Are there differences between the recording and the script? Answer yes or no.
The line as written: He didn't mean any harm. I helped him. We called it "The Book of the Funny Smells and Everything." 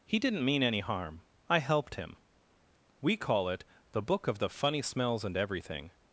yes